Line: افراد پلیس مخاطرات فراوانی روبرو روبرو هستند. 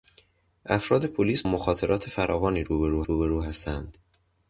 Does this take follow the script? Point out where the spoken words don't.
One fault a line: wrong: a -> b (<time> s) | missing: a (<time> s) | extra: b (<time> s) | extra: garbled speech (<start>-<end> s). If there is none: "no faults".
no faults